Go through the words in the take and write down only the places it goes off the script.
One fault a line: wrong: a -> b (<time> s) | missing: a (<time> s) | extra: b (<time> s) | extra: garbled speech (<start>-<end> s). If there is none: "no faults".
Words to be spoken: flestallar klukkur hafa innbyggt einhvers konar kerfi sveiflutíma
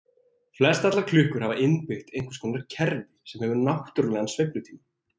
extra: sem hefur náttúrlegan (3.3 s)